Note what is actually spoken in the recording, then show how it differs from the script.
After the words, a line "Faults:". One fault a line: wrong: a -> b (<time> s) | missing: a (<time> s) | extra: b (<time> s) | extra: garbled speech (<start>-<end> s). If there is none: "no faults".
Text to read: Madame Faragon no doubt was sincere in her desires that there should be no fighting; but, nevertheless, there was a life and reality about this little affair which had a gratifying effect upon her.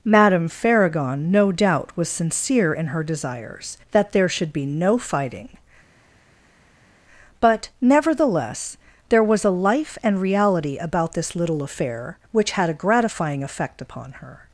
Madame Faragon no doubt was sincere in her desires that there should be no fighting; but, nevertheless, there was a life and reality about this little affair which had a gratifying effect upon her.
Faults:
no faults